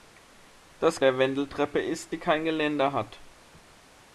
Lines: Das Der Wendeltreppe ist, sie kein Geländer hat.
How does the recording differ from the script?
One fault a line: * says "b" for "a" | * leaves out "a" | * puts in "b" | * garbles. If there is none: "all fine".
all fine